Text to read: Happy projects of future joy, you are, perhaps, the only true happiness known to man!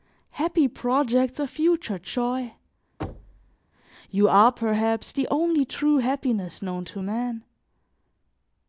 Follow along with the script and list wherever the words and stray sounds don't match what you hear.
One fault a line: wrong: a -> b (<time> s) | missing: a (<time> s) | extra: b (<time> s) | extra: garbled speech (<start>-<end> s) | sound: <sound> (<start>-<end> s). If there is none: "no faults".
sound: thud (3.0-3.6 s)